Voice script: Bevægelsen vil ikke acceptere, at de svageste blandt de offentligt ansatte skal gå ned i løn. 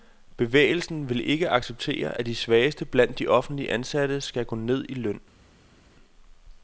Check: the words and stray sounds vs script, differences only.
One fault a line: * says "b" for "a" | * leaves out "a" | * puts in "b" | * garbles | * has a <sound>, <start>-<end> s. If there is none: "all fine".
all fine